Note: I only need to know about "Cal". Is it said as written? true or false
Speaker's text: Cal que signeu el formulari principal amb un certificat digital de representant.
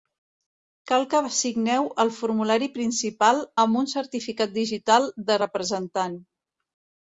true